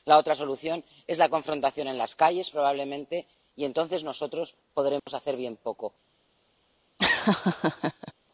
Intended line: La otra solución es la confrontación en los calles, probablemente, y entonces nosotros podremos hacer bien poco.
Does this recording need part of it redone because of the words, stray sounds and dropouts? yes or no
yes